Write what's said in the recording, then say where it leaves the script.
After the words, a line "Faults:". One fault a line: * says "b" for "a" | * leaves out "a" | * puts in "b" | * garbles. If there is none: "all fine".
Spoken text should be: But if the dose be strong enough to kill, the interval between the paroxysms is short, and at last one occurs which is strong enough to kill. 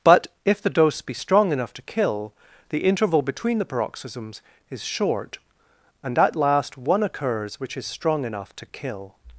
But if the dose be strong enough to kill, the interval between the paroxysms is short, and at last one occurs which is strong enough to kill.
Faults:
all fine